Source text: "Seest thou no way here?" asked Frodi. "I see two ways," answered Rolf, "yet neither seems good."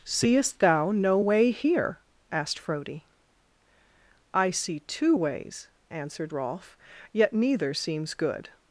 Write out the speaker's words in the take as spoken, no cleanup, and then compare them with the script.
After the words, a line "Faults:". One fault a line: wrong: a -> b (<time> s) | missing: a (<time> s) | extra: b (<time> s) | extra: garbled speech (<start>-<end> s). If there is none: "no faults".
"Seest thou no way here?" asked Frodi. "I see two ways," answered Rolf, "yet neither seems good."
Faults:
no faults